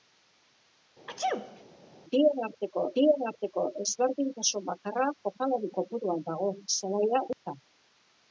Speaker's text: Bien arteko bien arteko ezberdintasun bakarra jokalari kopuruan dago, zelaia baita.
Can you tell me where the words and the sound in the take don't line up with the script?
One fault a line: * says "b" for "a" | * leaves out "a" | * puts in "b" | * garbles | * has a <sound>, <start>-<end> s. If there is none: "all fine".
* has a sneeze, 1.1-1.6 s
* has a dropout, 7.3-7.4 s